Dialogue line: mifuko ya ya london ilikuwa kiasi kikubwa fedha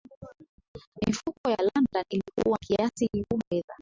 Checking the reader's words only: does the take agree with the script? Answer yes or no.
yes